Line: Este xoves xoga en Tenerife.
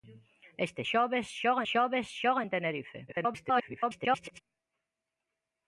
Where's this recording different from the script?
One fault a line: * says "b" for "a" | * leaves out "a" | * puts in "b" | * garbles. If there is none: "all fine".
* puts in "xoves xoga"
* garbles